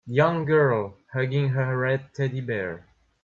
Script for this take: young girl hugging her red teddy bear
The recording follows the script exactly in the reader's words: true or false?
true